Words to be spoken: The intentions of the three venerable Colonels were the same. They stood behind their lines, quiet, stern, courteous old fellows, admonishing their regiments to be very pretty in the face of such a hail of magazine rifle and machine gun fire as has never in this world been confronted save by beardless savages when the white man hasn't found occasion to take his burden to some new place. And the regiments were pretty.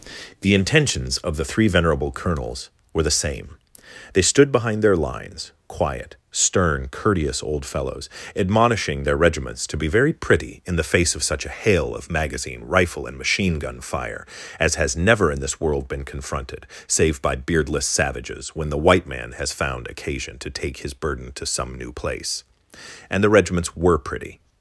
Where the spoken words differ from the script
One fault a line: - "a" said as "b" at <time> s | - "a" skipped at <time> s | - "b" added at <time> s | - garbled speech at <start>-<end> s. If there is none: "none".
- "hasn't" said as "has" at 19.3 s